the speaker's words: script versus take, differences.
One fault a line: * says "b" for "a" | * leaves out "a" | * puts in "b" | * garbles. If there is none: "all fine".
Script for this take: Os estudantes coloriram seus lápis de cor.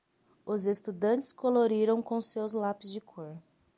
* puts in "com"